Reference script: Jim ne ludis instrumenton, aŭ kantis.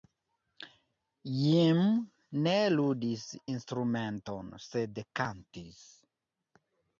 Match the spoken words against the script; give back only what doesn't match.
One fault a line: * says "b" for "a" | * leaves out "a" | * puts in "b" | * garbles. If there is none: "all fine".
* says "sed" for "aŭ"